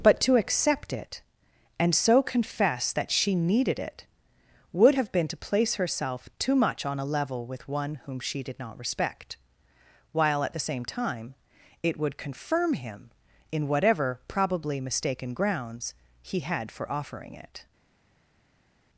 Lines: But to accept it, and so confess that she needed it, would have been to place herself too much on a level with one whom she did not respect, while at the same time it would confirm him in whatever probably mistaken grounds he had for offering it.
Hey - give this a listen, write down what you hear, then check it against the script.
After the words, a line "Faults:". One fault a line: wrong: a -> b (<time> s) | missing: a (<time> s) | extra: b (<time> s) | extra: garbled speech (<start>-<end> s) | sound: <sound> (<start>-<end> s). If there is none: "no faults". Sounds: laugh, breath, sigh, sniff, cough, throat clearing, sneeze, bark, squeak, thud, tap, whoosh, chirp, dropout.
But to accept it, and so confess that she needed it, would have been to place herself too much on a level with one whom she did not respect, while at the same time it would confirm him in whatever probably mistaken grounds he had for offering it.
Faults:
no faults